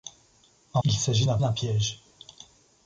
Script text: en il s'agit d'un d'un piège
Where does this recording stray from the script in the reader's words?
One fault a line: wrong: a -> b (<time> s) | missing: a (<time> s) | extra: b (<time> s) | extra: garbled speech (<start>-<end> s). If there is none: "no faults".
no faults